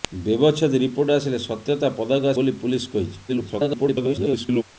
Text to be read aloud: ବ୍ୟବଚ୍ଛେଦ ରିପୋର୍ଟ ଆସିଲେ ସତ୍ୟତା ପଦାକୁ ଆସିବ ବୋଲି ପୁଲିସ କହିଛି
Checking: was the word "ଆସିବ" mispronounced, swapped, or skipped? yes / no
yes